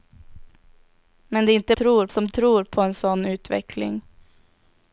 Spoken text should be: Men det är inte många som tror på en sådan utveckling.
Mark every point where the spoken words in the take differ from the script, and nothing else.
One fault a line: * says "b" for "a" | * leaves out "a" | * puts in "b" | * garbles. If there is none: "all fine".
* says "tror" for "många"